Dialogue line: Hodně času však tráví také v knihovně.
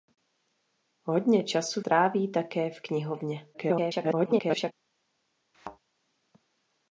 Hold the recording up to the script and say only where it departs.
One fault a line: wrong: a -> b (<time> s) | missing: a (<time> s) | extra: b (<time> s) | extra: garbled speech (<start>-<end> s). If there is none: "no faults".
missing: však (1.8 s)
extra: garbled speech (3.5-4.7 s)